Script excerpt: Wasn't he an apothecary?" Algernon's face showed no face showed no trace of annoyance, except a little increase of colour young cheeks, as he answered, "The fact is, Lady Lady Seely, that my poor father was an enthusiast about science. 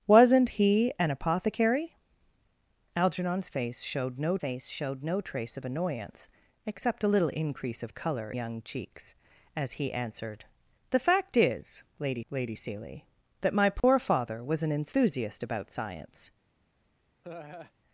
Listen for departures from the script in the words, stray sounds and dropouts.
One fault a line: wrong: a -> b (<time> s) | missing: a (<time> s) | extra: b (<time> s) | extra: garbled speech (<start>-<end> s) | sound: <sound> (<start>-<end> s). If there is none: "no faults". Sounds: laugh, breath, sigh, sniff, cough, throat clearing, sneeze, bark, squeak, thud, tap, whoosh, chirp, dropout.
sound: dropout (13.8-13.8 s)
sound: laugh (17.2-17.7 s)